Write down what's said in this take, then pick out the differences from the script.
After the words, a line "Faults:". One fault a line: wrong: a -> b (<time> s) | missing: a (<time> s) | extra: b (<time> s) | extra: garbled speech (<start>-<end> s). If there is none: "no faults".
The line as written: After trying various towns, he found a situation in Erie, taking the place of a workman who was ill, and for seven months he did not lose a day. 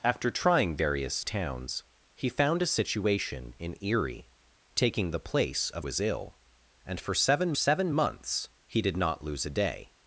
After trying various towns, he found a situation in Erie, taking the place of was ill, and for seven seven months he did not lose a day.
Faults:
missing: a workman who (5.8 s)
extra: seven (7.5 s)